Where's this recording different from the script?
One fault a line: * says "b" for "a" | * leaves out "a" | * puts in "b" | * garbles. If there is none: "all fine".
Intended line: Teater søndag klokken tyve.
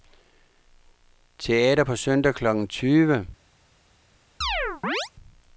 * puts in "på"